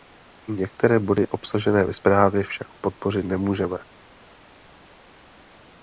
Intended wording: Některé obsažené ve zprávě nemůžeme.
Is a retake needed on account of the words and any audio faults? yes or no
yes